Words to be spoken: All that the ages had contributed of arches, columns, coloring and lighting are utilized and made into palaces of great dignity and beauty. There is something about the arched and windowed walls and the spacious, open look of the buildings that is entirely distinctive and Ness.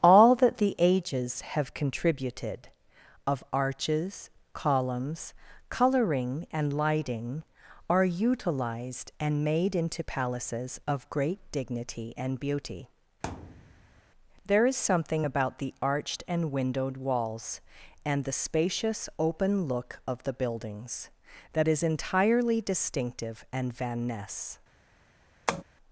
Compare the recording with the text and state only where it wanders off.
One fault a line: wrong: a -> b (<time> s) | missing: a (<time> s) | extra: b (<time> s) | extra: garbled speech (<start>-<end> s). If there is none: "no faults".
wrong: had -> have (1.4 s)
extra: Van (23.7 s)